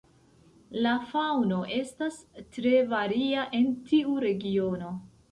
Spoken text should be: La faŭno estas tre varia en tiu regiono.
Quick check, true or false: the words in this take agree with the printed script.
true